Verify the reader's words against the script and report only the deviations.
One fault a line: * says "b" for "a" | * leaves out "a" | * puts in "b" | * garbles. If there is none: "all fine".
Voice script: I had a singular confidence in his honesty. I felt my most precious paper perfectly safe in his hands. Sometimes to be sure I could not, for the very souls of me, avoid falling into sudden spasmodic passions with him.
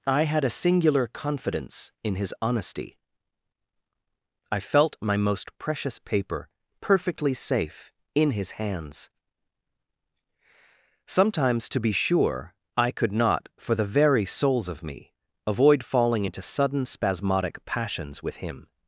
all fine